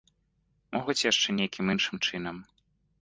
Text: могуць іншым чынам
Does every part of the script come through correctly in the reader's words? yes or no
no